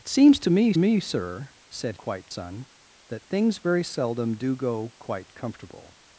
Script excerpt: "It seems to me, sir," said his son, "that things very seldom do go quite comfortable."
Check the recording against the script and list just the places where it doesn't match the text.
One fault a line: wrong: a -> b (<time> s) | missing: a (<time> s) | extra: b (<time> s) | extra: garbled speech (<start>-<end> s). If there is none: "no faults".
extra: me (0.7 s)
wrong: his -> quite (2.0 s)